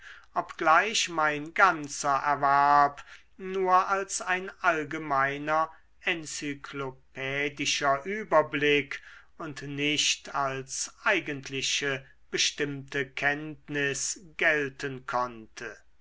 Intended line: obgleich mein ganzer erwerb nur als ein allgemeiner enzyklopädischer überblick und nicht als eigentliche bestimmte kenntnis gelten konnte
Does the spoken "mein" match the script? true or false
true